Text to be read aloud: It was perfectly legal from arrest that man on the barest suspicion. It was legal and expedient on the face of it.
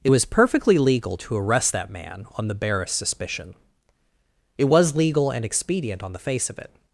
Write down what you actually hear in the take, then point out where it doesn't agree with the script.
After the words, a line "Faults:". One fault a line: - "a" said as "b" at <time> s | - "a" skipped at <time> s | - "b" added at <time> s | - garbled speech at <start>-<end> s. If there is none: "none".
It was perfectly legal to arrest that man on the barest suspicion. It was legal and expedient on the face of it.
Faults:
- "from" said as "to" at 1.1 s